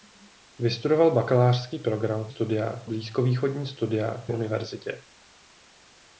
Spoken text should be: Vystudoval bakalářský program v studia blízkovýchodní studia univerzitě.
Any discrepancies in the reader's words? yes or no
no